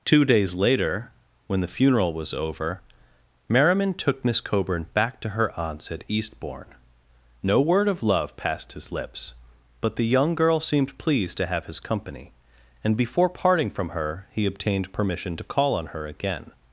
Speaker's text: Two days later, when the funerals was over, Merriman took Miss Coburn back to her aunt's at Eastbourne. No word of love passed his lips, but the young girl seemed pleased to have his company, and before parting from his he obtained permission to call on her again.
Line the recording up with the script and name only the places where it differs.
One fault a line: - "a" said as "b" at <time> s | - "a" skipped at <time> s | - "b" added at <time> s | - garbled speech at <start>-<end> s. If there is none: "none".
- "funerals" said as "funeral" at 1.7 s
- "his" said as "her" at 13.9 s